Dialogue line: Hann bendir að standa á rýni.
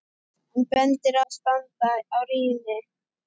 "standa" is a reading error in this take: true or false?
false